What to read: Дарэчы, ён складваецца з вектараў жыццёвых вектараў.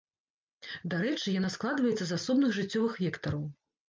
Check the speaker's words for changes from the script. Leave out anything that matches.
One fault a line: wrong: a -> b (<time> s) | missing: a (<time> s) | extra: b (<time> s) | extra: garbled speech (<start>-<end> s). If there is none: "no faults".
wrong: ён -> яна (1.4 s)
wrong: вектараў -> асобных (2.2 s)